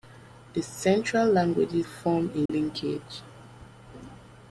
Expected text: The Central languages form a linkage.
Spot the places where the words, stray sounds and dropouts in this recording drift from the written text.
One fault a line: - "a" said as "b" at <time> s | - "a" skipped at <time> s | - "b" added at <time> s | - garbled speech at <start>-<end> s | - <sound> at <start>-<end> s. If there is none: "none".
- dropout at 2.5-2.5 s